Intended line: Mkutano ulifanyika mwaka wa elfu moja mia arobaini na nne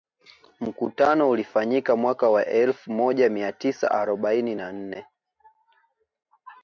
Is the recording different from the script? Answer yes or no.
yes